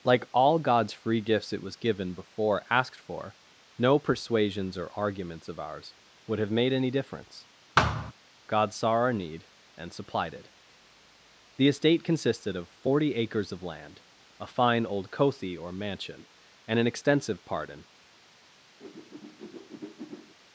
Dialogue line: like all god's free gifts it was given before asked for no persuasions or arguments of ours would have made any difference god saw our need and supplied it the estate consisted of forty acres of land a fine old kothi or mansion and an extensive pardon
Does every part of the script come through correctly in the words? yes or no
yes